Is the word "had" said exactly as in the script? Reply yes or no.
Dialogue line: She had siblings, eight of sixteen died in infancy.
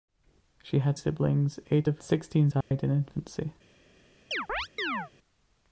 yes